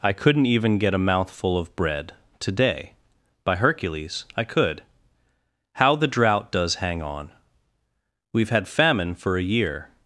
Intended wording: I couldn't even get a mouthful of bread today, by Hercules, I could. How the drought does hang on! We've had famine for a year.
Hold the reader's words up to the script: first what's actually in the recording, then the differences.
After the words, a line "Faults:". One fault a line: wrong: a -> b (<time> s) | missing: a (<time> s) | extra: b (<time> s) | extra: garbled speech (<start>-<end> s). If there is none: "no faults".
I couldn't even get a mouthful of bread today, by Hercules, I could. How the drought does hang on! We've had famine for a year.
Faults:
no faults